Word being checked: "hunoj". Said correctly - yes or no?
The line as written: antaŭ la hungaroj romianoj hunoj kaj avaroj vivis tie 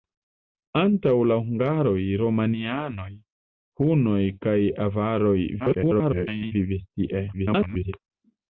yes